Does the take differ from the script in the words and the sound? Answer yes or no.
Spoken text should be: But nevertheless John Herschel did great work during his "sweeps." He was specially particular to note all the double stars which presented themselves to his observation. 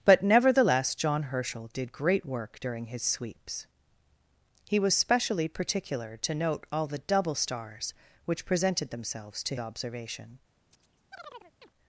yes